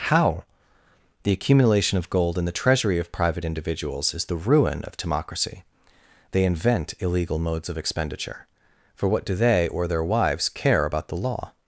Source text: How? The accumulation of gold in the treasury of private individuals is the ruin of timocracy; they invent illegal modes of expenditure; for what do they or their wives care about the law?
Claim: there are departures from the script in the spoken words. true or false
false